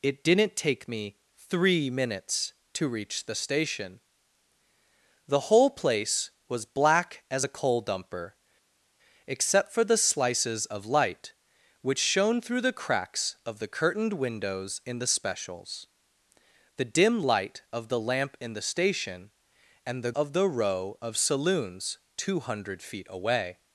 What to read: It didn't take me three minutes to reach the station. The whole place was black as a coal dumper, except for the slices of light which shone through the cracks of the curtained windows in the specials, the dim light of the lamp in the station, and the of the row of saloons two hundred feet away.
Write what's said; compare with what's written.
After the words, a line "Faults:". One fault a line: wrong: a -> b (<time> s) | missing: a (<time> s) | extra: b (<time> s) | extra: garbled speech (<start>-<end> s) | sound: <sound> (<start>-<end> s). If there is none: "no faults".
It didn't take me three minutes to reach the station. The whole place was black as a coal dumper, except for the slices of light which shone through the cracks of the curtained windows in the specials, the dim light of the lamp in the station, and the of the row of saloons two hundred feet away.
Faults:
no faults